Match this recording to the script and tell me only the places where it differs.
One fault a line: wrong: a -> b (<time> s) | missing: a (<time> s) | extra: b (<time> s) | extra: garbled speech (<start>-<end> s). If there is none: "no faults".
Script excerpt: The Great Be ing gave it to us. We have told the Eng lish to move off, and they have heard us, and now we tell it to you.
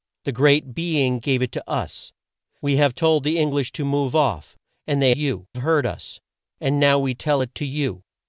wrong: have -> you (5.1 s)